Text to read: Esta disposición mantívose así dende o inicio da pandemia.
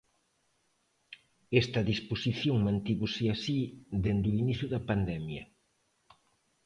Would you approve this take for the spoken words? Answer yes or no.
yes